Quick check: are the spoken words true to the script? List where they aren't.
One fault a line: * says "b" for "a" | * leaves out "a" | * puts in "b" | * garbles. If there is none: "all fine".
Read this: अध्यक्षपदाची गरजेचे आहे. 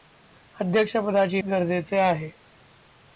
all fine